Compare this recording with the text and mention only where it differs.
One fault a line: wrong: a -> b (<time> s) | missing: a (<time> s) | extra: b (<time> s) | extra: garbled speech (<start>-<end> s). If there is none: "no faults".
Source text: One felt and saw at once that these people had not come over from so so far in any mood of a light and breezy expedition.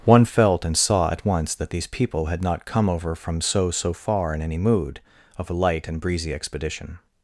no faults